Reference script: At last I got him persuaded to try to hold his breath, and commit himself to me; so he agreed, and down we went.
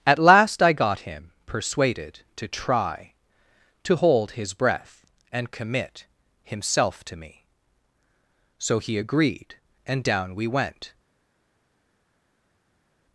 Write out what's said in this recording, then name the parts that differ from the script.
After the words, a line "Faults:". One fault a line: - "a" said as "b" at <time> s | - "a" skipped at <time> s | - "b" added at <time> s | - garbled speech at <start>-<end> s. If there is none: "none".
At last I got him persuaded to try to hold his breath, and commit himself to me; so he agreed, and down we went.
Faults:
none